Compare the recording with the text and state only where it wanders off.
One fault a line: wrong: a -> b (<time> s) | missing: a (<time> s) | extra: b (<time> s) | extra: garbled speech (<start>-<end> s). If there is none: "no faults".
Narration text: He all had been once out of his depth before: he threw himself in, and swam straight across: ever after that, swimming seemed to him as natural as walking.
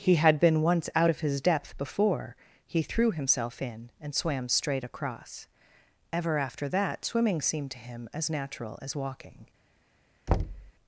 missing: all (0.1 s)